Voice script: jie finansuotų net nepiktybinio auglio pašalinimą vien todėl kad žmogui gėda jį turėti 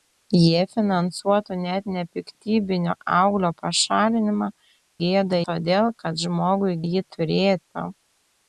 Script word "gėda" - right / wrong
wrong